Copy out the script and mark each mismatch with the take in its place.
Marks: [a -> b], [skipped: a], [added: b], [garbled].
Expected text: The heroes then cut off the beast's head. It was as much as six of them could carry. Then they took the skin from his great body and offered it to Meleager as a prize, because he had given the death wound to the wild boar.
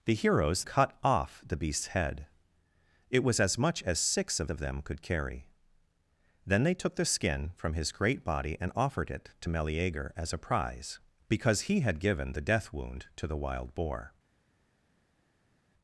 The heroes [skipped: then] cut off the beast's head. It was as much as six of [added: of] them could carry. Then they took the skin from his great body and offered it to Meleager as a prize, because he had given the death wound to the wild boar.